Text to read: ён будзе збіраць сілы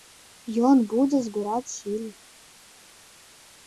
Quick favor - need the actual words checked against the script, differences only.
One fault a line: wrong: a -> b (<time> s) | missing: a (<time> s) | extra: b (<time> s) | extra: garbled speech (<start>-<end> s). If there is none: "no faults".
no faults